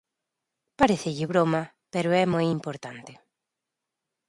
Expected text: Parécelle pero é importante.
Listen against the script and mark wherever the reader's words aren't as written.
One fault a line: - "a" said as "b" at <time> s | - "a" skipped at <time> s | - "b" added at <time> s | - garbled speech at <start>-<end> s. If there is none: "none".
- "broma" added at 1.3 s
- "moi" added at 2.3 s